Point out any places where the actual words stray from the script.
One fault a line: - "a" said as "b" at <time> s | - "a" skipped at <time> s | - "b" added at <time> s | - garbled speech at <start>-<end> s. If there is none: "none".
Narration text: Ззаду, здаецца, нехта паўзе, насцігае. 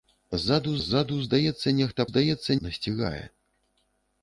- "ззаду" added at 0.9 s
- "паўзе" said as "здаецца" at 2.1 s